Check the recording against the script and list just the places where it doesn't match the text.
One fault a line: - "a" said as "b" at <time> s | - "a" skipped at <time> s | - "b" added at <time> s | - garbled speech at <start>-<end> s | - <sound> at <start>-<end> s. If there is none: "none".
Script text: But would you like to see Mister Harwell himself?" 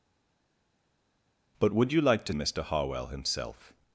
- "see" skipped at 2.3 s